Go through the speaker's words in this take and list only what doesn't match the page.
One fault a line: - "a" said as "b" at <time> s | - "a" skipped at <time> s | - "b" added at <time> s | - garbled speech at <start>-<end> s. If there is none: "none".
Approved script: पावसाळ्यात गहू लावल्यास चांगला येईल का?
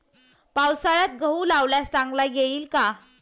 none